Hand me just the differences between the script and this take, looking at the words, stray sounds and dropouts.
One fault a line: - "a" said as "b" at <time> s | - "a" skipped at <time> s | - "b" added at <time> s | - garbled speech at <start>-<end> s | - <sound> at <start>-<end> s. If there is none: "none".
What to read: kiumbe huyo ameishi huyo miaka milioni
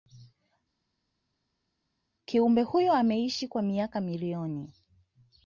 - "huyo" said as "kwa" at 3.5 s